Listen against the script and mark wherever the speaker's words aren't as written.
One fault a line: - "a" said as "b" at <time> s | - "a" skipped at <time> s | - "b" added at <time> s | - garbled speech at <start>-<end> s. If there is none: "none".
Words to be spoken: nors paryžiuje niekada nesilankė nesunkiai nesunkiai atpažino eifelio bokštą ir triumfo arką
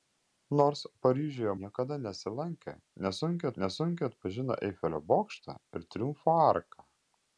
none